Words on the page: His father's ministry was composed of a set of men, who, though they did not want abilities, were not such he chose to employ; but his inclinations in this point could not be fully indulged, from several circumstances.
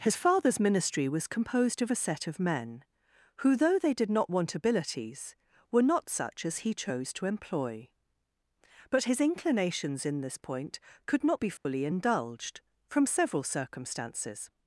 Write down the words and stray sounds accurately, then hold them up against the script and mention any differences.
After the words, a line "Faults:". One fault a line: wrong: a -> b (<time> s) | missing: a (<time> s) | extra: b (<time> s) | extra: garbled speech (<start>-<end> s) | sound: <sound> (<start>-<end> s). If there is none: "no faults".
His father's ministry was composed of a set of men, who, though they did not want abilities, were not such as he chose to employ; but his inclinations in this point could not be fully indulged, from several circumstances.
Faults:
extra: as (6.4 s)
sound: dropout (11.6-11.7 s)